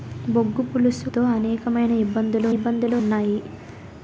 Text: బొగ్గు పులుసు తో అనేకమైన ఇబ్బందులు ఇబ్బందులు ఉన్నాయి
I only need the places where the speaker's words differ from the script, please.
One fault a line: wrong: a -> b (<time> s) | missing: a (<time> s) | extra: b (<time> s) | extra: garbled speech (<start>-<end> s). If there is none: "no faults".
no faults